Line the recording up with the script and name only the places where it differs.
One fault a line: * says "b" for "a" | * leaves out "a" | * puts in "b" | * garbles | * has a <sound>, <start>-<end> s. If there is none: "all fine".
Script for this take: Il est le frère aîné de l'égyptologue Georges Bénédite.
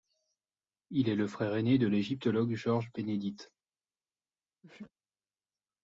* has a sneeze, 4.6-4.9 s